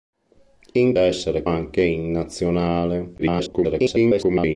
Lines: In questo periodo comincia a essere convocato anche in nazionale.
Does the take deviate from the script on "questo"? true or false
true